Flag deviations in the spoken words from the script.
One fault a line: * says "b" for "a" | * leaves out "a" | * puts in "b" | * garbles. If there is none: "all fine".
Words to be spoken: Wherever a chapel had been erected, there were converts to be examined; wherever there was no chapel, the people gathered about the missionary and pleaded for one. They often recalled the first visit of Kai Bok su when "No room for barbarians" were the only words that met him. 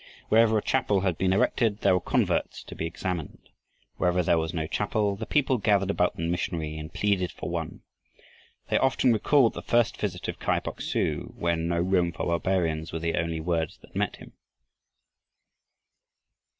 all fine